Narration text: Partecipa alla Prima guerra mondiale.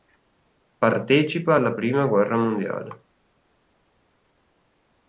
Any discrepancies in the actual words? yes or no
no